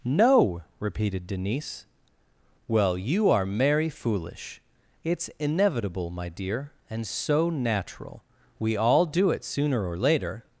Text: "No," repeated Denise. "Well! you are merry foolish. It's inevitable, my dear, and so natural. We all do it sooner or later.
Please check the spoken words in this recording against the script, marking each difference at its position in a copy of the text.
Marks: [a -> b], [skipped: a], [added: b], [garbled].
"No," repeated Denise. "Well! you are merry foolish. It's inevitable, my dear, and so natural. We all do it sooner or later.